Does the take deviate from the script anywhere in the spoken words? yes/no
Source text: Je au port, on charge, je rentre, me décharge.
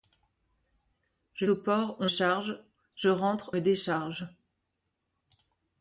no